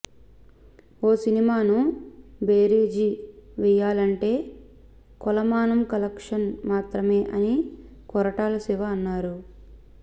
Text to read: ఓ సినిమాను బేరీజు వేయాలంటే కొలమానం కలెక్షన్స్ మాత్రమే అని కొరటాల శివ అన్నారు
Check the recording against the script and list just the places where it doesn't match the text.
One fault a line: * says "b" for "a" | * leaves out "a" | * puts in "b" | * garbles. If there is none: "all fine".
all fine